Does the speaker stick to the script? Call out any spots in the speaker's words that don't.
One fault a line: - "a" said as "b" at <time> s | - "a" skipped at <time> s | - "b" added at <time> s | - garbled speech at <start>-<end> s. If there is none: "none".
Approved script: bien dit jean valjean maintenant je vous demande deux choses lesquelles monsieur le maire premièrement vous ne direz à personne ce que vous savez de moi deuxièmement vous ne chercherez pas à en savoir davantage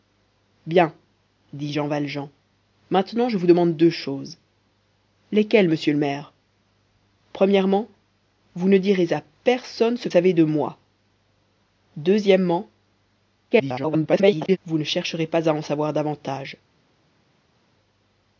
- "que vous" skipped at 10.1 s
- garbled speech at 13.5-14.6 s